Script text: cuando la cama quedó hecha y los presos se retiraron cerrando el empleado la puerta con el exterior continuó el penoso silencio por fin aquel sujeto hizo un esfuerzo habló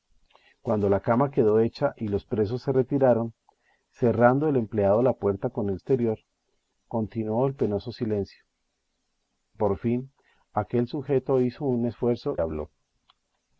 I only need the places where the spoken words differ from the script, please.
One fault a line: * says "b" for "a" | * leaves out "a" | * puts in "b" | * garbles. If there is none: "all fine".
all fine